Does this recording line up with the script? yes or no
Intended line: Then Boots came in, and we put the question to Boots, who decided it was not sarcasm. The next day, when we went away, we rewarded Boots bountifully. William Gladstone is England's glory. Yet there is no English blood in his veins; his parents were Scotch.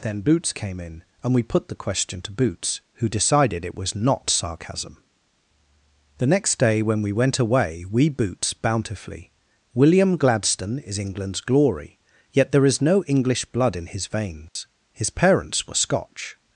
no